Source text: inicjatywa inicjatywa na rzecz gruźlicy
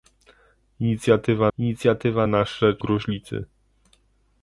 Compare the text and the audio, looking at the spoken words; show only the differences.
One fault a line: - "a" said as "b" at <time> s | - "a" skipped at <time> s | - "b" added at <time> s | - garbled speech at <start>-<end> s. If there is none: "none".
none